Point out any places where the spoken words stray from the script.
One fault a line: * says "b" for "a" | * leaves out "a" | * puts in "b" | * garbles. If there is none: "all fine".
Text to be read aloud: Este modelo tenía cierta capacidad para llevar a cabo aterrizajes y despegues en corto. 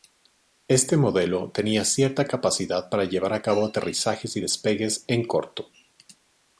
all fine